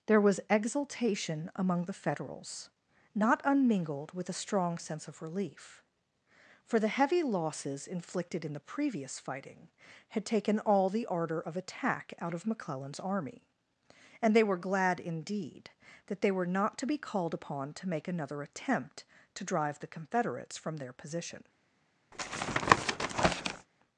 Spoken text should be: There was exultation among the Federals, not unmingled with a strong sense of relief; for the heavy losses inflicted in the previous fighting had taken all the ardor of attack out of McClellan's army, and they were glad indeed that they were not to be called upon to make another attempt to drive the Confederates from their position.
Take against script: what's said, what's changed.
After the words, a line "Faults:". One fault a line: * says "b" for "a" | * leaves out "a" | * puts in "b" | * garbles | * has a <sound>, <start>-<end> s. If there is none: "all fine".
There was exultation among the Federals, not unmingled with a strong sense of relief; for the heavy losses inflicted in the previous fighting had taken all the ardor of attack out of McClellan's army, and they were glad indeed that they were not to be called upon to make another attempt to drive the Confederates from their position.
Faults:
* has a tap, 22.1-23.7 s